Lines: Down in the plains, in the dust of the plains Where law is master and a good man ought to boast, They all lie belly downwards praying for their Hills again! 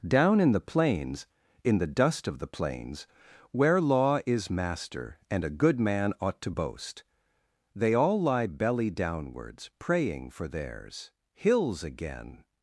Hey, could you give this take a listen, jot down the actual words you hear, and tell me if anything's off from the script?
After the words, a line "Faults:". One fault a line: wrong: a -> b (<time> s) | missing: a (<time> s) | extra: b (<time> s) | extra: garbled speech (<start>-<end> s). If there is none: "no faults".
Down in the plains, in the dust of the plains Where law is master and a good man ought to boast, They all lie belly downwards praying for theirs Hills again!
Faults:
wrong: their -> theirs (10.5 s)